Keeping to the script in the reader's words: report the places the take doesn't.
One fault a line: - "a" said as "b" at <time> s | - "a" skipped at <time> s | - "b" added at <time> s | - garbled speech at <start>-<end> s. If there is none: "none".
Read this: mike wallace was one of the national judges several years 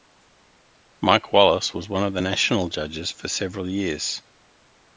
- "for" added at 3.1 s